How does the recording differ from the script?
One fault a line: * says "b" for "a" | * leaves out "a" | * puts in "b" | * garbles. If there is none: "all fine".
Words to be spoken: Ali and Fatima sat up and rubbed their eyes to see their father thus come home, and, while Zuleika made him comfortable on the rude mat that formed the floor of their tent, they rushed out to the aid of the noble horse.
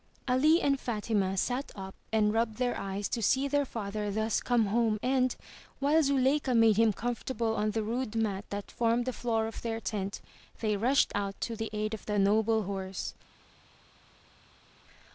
all fine